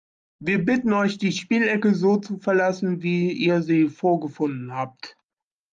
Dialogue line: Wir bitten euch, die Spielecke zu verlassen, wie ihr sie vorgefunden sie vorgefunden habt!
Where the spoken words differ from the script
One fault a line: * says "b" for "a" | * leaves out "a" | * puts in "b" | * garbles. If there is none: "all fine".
* puts in "so"
* leaves out "sie vorgefunden"